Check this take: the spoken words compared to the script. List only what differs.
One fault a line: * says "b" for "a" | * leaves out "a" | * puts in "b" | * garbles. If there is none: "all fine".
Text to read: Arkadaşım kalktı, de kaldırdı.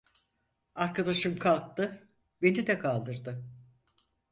* puts in "beni"